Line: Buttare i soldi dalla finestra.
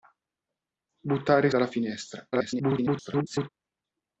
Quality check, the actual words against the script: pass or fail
fail